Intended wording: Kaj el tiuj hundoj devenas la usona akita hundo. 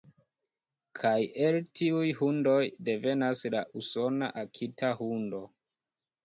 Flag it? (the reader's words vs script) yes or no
no